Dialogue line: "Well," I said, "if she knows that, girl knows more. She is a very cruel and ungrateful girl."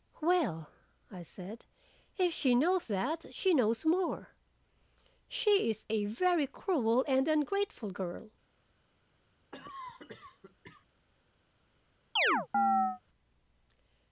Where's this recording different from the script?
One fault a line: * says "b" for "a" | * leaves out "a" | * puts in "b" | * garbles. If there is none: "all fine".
* says "she" for "girl"